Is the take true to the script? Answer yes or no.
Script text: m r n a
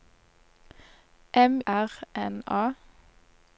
yes